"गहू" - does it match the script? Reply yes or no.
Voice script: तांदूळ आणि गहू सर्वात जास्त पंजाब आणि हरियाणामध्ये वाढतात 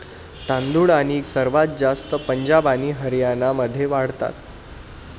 no